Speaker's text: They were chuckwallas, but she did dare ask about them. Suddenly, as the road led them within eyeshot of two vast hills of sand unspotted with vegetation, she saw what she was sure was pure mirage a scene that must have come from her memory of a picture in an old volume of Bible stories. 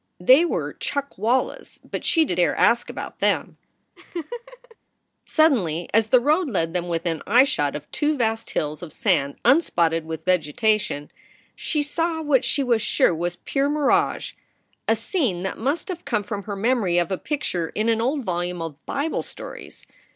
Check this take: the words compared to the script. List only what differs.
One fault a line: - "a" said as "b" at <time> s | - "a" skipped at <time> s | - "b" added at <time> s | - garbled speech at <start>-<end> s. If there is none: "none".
none